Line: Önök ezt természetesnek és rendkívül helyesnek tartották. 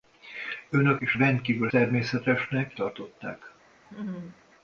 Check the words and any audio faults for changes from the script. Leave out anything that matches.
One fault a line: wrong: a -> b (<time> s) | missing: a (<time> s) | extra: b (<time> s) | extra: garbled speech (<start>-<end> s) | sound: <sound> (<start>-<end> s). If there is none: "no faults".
missing: ezt természetesnek (1.0 s)
wrong: helyesnek -> természetesnek (1.7 s)
sound: laugh (3.9-4.4 s)